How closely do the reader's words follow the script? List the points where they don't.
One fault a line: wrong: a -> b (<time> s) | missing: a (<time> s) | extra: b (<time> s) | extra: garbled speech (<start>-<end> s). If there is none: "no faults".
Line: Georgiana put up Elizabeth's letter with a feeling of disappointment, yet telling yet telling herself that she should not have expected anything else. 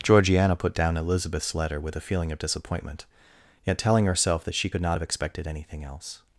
wrong: up -> down (0.7 s)
missing: yet telling (4.1 s)
wrong: should -> could (4.7 s)